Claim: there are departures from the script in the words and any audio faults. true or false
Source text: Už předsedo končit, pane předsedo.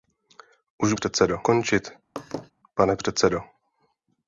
true